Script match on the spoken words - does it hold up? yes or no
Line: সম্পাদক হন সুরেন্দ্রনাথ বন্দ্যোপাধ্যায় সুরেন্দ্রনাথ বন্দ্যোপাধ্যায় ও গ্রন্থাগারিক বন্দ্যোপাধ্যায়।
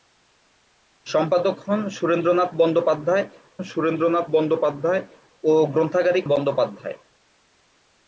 yes